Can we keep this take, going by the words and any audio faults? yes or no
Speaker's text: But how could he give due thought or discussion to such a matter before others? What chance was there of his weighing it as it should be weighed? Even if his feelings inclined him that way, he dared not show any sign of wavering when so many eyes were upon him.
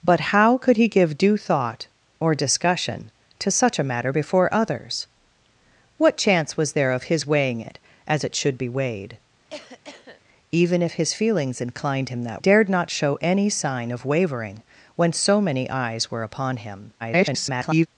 no